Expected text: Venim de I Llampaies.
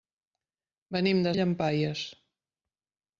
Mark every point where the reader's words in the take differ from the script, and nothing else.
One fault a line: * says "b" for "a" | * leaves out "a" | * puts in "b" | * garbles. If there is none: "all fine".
all fine